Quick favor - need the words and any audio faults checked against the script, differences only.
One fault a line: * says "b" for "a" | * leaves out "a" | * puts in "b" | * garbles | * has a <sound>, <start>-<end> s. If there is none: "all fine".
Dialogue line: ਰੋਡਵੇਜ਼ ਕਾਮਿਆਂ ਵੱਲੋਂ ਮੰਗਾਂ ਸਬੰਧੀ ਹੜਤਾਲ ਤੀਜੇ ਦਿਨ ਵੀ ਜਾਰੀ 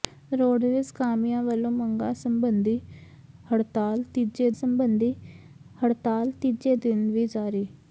* puts in "ਸਬੰਧੀ ਹੜਤਾਲ ਤੀਜੇ"